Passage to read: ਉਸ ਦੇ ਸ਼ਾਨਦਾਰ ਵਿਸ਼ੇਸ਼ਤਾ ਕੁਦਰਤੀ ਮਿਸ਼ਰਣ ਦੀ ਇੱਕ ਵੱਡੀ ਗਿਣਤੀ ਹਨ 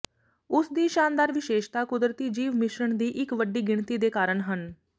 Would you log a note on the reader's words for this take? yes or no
yes